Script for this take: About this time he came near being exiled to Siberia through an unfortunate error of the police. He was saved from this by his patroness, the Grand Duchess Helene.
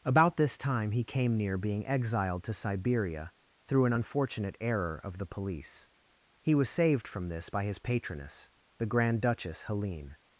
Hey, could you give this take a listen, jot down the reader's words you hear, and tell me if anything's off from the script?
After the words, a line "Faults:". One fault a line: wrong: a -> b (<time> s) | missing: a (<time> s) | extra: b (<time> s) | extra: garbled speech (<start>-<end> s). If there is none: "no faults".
About this time he came near being exiled to Siberia through an unfortunate error of the police. He was saved from this by his patroness, the Grand Duchess Helene.
Faults:
no faults